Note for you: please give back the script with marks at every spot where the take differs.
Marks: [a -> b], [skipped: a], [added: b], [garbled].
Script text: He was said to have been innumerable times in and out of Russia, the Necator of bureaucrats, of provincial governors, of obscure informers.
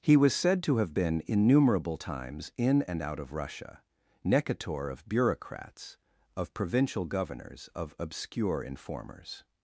He was said to have been innumerable times in and out of Russia, [skipped: the] Necator of bureaucrats, of provincial governors, of obscure informers.